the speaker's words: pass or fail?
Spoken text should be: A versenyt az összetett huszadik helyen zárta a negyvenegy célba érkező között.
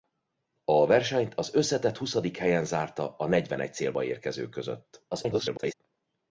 fail